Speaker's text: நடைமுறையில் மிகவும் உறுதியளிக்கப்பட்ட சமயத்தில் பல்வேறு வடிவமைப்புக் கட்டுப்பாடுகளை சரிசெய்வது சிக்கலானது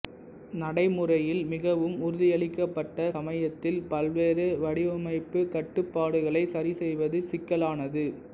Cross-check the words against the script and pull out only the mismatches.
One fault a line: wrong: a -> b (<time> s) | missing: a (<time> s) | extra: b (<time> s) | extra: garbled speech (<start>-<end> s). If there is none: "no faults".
no faults